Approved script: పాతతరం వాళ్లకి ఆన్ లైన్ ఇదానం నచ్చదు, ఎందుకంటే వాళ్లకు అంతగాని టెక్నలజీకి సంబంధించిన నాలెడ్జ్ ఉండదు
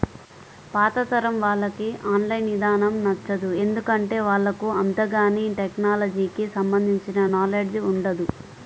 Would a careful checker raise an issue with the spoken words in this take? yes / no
no